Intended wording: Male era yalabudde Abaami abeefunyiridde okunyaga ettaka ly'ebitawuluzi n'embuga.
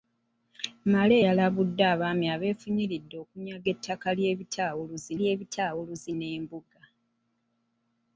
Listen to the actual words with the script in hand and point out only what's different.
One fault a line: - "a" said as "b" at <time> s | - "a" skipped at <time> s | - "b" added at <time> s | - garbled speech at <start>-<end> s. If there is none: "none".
- "era" skipped at 1.1 s
- "ly'ebitawuluzi" added at 5.2 s